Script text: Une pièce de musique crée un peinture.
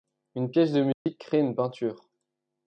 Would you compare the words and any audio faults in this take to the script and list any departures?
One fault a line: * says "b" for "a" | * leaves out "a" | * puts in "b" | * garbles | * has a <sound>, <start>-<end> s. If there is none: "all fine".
* has a dropout, 0.9-1.1 s
* says "une" for "un"